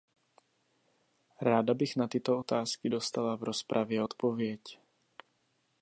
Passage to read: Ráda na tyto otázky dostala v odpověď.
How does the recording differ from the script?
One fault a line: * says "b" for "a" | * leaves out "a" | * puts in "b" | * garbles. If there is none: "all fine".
* puts in "bych"
* puts in "rozpravě"